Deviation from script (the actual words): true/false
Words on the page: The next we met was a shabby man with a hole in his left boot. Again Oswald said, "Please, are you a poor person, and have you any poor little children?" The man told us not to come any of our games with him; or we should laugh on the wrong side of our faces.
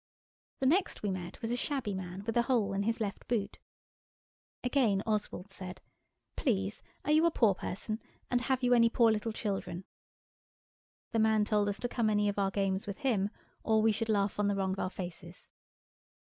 true